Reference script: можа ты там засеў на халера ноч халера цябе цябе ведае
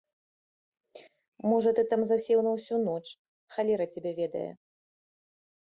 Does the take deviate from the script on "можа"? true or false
false